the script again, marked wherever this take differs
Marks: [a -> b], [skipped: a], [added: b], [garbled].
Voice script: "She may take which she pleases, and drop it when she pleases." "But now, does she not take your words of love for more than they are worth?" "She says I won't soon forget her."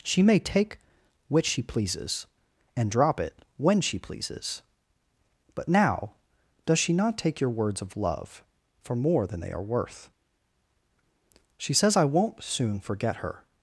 "She may take which she pleases, and drop it when she pleases." "But now, does she not take your words of love for more than they are worth?" "She says I won't soon forget her."